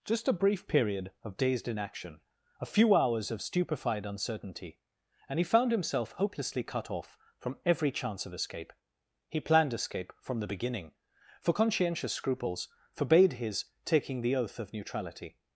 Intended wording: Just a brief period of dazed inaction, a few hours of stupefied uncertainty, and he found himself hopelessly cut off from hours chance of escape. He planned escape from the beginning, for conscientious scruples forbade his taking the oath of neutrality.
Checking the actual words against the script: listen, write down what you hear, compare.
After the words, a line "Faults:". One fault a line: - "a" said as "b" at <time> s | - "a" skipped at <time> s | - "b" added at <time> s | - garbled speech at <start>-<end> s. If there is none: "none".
Just a brief period of dazed inaction, a few hours of stupefied uncertainty, and he found himself hopelessly cut off from every chance of escape. He planned escape from the beginning, for conscientious scruples forbade his taking the oath of neutrality.
Faults:
- "hours" said as "every" at 7.7 s